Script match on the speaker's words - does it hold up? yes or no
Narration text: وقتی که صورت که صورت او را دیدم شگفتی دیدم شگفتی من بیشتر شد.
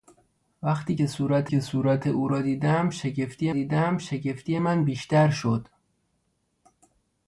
yes